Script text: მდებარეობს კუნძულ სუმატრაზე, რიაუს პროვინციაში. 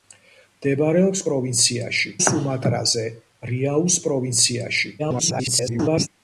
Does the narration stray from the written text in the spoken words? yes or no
yes